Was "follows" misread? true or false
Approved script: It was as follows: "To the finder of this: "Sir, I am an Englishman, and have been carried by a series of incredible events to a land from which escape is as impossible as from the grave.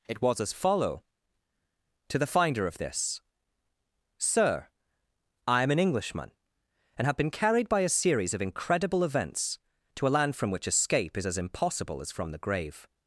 true